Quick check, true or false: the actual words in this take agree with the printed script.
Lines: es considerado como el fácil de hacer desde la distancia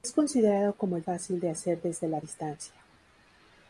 true